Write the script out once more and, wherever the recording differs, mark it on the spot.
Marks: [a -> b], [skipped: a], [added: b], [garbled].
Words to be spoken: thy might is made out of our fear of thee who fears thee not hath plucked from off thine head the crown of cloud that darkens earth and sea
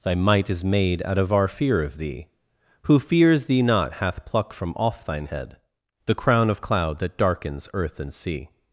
thy might is made out of our fear of thee who fears thee not hath [plucked -> pluck] from off thine head the crown of cloud that darkens earth and sea